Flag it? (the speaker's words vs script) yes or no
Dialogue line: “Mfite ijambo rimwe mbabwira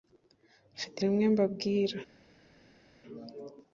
yes